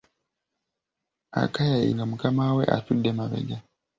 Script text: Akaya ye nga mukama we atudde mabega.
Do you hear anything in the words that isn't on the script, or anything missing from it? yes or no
no